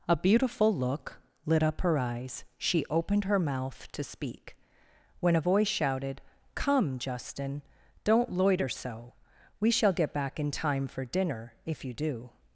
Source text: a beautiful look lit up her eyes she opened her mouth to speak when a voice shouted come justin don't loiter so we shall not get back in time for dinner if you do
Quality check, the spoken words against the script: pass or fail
fail